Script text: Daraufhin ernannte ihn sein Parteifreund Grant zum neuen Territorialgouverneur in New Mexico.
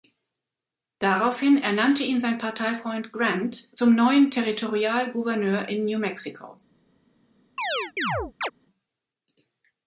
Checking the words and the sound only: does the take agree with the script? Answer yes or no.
no